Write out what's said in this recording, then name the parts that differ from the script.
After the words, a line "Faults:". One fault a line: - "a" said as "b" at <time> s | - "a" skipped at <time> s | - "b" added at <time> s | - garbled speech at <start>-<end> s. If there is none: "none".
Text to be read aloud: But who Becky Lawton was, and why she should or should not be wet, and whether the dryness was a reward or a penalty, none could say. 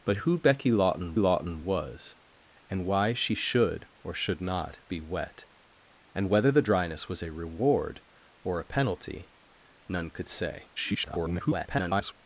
But who Becky Lawton Lawton was, and why she should or should not be wet, and whether the dryness was a reward or a penalty, none could say. [garbled]
Faults:
- "Lawton" added at 1.2 s
- garbled speech at 10.8-12.1 s